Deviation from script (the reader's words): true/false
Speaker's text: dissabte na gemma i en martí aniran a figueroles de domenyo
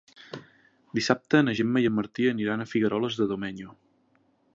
false